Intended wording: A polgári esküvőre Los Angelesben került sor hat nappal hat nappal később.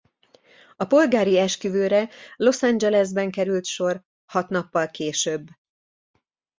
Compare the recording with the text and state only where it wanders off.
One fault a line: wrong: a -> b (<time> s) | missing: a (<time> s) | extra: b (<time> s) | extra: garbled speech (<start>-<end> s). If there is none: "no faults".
missing: hat nappal (4.9 s)